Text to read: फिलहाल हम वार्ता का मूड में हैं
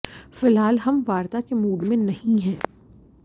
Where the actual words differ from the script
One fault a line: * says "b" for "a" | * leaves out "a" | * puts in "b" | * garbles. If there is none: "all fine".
* says "के" for "का"
* puts in "नहीं"